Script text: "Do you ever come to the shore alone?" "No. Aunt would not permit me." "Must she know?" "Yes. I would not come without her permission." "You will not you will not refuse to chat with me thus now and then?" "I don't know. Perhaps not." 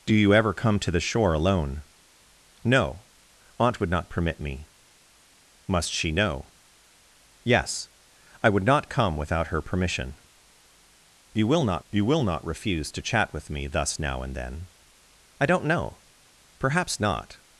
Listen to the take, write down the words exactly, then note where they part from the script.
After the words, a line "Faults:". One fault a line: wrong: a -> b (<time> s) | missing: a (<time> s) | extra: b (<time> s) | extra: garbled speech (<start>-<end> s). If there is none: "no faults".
"Do you ever come to the shore alone?" "No. Aunt would not permit me." "Must she know?" "Yes. I would not come without her permission." "You will not you will not refuse to chat with me thus now and then?" "I don't know. Perhaps not."
Faults:
no faults